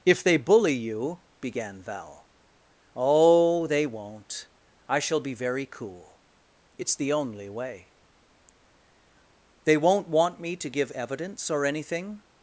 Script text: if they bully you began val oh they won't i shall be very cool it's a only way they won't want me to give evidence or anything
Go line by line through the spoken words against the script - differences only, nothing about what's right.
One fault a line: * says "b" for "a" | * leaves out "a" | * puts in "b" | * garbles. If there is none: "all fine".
* says "the" for "a"